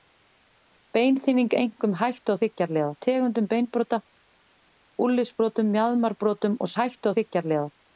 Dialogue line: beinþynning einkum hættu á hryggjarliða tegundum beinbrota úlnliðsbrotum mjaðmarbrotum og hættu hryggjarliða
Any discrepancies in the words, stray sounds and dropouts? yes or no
no